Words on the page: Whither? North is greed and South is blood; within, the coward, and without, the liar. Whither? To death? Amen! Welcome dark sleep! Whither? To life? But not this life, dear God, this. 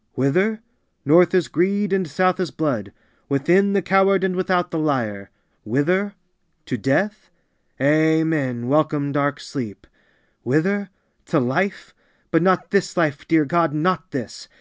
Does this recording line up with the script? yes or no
no